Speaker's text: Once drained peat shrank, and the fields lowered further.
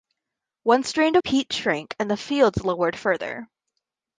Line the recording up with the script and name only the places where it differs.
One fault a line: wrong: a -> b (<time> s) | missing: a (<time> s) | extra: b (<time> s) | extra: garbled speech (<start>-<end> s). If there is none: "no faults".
no faults